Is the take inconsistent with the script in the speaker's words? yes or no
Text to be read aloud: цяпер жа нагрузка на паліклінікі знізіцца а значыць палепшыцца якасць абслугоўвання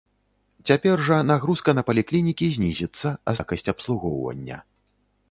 yes